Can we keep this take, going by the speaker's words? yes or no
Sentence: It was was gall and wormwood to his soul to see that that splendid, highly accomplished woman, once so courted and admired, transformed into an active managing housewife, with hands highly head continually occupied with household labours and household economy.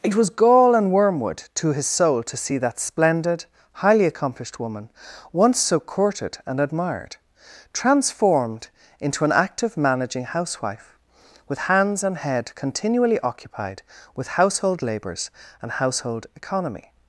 no